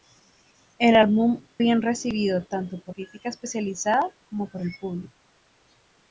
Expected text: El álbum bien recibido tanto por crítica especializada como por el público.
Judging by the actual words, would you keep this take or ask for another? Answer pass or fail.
pass